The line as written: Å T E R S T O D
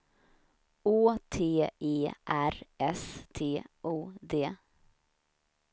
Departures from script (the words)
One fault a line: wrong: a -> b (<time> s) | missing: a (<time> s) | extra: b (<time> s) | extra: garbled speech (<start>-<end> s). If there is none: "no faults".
no faults